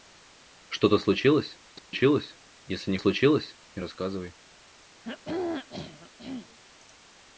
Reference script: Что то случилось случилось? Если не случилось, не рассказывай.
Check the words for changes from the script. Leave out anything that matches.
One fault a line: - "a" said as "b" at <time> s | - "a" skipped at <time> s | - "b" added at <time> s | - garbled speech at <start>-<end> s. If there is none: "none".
none